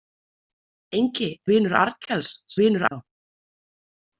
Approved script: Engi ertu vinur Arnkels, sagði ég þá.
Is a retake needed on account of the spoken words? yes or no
yes